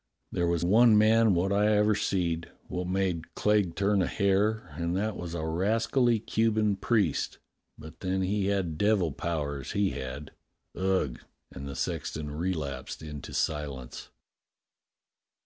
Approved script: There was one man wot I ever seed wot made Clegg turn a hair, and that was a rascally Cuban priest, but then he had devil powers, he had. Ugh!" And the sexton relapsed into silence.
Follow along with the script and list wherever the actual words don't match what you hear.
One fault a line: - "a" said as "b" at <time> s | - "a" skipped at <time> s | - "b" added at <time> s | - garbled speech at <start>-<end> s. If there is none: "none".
none